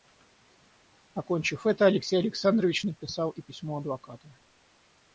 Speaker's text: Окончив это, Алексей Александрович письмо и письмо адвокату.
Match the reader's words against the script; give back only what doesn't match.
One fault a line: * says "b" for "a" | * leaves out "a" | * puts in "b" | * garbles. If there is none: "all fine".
* says "написал" for "письмо"